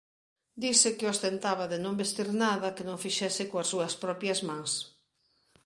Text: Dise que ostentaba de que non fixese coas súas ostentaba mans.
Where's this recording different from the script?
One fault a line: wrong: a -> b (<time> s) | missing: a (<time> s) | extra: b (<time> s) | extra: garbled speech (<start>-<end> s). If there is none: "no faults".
extra: non vestir nada (1.9 s)
wrong: ostentaba -> propias (4.0 s)